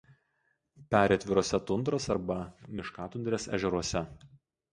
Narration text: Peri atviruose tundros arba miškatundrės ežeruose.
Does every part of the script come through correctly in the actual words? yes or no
yes